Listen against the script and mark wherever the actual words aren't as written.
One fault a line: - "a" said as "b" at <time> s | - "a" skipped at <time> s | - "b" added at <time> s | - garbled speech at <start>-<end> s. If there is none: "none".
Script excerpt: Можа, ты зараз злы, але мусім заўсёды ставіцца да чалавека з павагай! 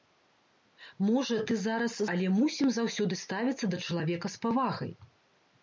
- "злы" skipped at 2.0 s